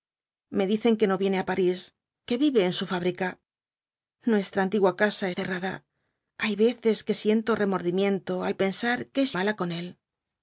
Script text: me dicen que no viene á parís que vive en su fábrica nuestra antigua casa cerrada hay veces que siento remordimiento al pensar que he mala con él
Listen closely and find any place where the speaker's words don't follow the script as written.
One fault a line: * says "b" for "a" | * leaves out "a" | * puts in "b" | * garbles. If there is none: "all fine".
all fine